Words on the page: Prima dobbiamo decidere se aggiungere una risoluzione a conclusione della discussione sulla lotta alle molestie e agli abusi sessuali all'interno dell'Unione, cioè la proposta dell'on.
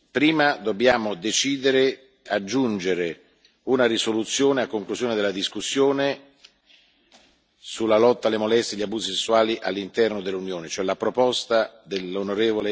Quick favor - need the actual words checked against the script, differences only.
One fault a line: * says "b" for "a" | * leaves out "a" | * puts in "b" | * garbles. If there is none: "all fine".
* leaves out "se"